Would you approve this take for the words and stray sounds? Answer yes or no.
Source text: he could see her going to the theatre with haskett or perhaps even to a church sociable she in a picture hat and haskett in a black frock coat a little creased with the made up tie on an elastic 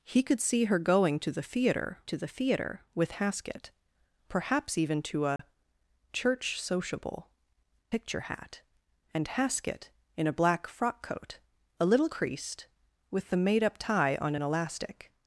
no